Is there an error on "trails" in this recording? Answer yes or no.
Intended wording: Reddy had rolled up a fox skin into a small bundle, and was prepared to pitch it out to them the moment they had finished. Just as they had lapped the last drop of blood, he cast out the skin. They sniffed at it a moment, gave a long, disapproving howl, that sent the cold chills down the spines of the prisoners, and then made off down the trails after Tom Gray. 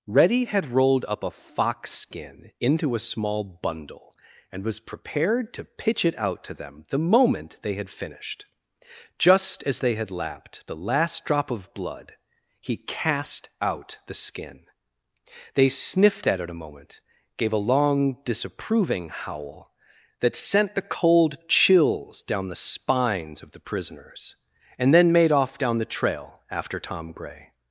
yes